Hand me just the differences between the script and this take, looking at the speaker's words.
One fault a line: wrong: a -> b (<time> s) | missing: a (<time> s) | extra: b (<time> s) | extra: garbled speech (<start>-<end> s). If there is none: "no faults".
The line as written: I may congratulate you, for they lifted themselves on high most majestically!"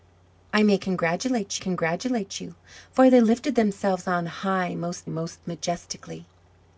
extra: congratulate (1.6 s)
extra: most (5.1 s)